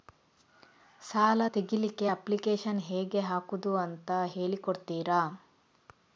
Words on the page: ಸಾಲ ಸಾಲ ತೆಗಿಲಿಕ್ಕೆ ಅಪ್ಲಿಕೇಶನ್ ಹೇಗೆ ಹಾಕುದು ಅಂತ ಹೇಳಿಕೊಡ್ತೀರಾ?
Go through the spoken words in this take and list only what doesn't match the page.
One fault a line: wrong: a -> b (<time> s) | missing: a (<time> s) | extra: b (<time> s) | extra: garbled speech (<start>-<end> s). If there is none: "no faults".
missing: ಸಾಲ (1.4 s)